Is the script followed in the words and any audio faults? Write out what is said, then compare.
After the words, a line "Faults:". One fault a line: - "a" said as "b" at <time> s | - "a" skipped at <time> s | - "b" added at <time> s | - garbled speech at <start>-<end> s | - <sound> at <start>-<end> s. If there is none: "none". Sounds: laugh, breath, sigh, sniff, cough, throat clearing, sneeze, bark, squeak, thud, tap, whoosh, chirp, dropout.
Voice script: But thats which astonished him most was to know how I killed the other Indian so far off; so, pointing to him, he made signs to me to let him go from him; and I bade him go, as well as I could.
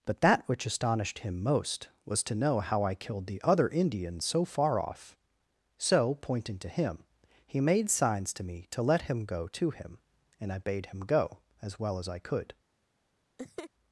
But that which astonished him most was to know how I killed the other Indian so far off; so, pointing to him, he made signs to me to let him go to him; and I bade him go, as well as I could.
Faults:
- "thats" said as "that" at 0.2 s
- "from" said as "to" at 9.5 s
- laugh at 13.4-13.7 s